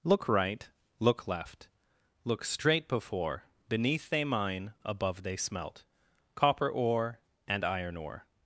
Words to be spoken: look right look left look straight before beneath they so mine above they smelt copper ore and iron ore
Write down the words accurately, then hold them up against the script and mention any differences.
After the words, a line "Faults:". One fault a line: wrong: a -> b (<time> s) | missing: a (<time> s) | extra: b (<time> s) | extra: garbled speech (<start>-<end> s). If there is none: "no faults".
look right look left look straight before beneath they mine above they smelt copper ore and iron ore
Faults:
missing: so (4.2 s)